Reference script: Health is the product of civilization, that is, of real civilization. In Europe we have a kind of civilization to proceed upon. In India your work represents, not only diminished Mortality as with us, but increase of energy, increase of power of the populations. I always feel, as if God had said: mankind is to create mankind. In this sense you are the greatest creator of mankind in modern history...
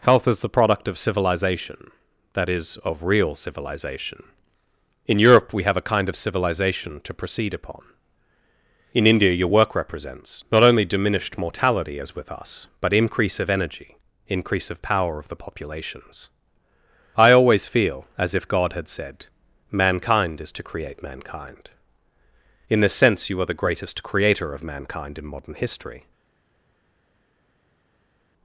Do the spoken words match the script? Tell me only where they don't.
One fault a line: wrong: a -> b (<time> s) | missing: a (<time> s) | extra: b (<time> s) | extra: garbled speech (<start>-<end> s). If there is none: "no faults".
no faults